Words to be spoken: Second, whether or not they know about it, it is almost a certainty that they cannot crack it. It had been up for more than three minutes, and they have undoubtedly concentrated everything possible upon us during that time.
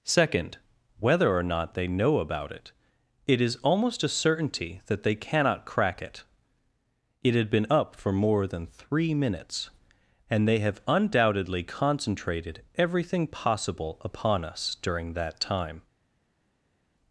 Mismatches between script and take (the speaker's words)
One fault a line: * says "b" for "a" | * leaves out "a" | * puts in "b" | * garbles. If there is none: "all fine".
all fine